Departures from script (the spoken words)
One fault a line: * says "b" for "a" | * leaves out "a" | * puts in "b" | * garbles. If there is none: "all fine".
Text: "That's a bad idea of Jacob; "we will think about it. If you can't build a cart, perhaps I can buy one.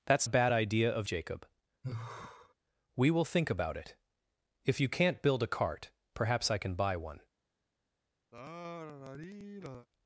all fine